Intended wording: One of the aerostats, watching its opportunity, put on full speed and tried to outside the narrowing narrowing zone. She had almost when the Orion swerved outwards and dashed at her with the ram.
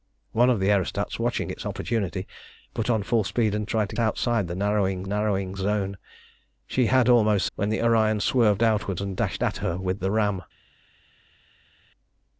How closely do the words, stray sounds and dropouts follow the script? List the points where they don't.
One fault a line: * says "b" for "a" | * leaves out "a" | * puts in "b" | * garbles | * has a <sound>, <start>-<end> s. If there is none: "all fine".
all fine